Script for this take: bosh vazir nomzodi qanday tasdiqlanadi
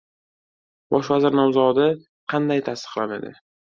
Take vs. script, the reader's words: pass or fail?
pass